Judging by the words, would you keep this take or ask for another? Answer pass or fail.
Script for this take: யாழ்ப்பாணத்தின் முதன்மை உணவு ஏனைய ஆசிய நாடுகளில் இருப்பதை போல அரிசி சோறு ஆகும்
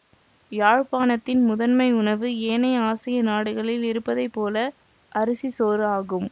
pass